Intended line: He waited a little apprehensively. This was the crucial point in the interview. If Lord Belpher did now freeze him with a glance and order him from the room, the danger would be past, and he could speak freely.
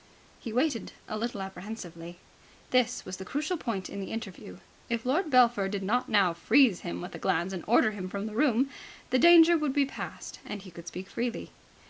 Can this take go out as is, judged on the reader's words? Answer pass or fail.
fail